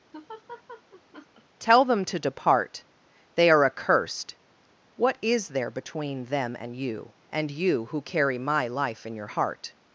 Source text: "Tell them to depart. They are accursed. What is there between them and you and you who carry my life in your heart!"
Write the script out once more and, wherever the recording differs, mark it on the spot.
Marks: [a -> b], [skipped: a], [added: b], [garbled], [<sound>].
[laugh] "Tell them to depart. They are accursed. What is there between them and you and you who carry my life in your heart!"